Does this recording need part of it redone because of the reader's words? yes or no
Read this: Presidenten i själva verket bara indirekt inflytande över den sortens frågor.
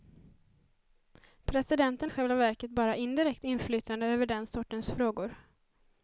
no